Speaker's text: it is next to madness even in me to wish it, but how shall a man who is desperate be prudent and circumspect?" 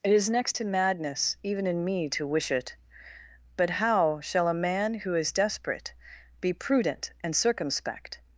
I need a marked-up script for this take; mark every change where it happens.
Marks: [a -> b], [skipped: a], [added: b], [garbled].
it is next to madness even in me to wish it, but how shall a man who is desperate be prudent and circumspect?"